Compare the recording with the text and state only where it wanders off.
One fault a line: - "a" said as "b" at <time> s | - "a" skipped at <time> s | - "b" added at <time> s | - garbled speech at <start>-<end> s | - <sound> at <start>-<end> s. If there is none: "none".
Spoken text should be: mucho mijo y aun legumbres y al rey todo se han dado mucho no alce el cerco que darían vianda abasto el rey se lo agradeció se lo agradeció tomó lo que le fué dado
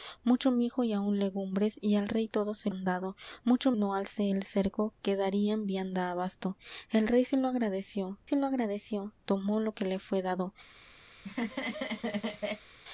- laugh at 11.1-12.7 s